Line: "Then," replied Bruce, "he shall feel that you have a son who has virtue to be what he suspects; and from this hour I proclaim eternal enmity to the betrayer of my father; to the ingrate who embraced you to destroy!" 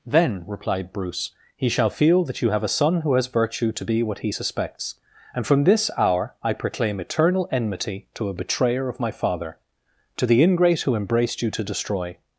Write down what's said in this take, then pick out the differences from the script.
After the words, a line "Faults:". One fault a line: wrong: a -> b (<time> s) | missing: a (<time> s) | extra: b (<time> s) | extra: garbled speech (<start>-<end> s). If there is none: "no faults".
"Then," replied Bruce, "he shall feel that you have a son who has virtue to be what he suspects; and from this hour I proclaim eternal enmity to a betrayer of my father; to the ingrate who embraced you to destroy!"
Faults:
wrong: the -> a (8.3 s)